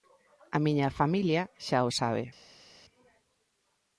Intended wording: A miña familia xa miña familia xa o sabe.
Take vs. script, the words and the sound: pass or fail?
fail